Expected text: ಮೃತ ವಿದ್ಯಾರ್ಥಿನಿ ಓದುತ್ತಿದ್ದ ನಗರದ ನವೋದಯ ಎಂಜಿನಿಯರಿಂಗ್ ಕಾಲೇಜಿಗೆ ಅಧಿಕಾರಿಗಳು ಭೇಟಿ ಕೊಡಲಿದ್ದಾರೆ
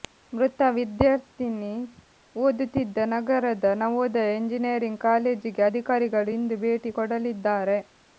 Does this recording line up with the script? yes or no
no